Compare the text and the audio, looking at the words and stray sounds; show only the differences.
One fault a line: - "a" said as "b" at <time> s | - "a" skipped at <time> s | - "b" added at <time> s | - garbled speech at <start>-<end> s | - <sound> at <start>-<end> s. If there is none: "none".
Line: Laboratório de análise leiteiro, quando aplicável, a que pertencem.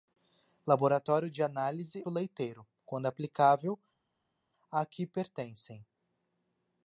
none